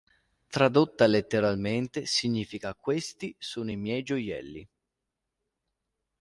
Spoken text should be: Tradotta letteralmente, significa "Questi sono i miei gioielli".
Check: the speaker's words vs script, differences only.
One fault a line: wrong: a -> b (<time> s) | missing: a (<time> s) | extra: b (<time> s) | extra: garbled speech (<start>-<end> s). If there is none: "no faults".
no faults